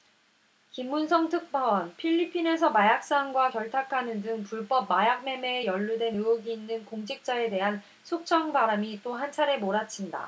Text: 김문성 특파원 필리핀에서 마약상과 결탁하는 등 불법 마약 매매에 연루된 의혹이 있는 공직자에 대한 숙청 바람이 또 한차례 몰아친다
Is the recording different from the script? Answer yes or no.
no